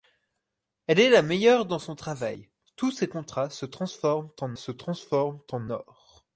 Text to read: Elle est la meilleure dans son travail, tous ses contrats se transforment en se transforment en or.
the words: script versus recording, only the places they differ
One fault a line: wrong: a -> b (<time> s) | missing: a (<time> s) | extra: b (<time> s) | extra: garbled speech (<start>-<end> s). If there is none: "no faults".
no faults